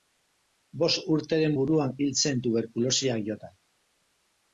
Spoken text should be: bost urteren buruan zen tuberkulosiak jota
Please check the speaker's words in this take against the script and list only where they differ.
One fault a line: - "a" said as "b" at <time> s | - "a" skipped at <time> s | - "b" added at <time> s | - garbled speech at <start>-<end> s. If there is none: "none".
- "hil" added at 2.0 s